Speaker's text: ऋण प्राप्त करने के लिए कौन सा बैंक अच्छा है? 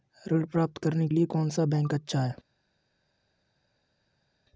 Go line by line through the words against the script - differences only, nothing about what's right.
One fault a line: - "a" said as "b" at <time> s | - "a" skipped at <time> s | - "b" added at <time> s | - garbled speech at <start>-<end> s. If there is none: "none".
- "के" skipped at 1.1 s